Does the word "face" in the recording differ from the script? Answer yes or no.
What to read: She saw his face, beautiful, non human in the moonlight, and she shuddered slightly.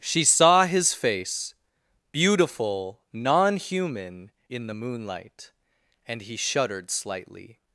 no